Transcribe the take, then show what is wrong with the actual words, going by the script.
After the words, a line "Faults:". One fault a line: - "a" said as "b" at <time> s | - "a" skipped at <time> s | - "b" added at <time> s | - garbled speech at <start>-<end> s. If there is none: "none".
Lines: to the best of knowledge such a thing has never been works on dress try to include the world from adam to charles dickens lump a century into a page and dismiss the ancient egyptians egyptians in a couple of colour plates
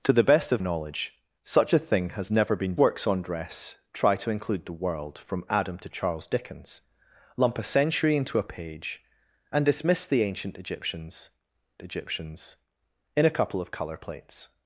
to the best of knowledge such a thing has never been works on dress try to include the world from adam to charles dickens lump a century into a page and dismiss the ancient egyptians egyptians in a couple of colour plates
Faults:
none